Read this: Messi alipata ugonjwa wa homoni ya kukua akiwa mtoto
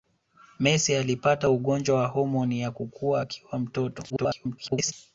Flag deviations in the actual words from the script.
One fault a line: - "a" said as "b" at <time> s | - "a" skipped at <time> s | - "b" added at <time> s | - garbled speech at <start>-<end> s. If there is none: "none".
- garbled speech at 4.1-4.9 s